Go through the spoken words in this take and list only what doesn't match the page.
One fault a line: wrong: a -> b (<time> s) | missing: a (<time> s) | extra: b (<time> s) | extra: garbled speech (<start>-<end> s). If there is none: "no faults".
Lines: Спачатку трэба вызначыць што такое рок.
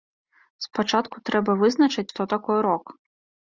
no faults